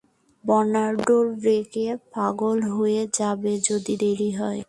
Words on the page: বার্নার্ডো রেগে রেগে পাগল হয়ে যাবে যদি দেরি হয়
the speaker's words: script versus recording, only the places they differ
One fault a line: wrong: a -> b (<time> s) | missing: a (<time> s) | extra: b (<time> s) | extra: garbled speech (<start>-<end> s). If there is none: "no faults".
missing: রেগে (1.9 s)